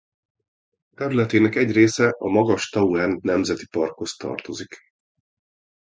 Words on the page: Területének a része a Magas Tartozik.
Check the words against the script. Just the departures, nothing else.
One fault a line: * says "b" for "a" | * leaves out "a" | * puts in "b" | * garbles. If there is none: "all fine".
* says "egy" for "a"
* puts in "Tauern Nemzeti Parkhoz"